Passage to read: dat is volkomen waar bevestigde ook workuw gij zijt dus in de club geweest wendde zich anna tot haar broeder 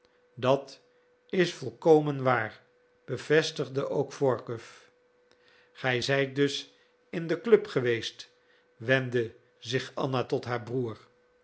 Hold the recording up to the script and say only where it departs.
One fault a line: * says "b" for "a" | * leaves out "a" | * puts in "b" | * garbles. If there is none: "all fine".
all fine